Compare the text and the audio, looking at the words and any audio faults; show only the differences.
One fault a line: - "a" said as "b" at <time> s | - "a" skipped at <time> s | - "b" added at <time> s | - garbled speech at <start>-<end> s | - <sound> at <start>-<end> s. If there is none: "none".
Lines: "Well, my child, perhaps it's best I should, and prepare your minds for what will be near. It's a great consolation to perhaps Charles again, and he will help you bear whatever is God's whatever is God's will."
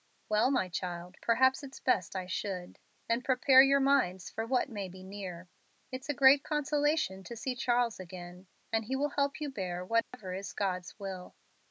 - "will" said as "may" at 4.7 s
- "perhaps" said as "see" at 7.4 s
- dropout at 10.0-10.1 s
- "whatever is God's" skipped at 11.0 s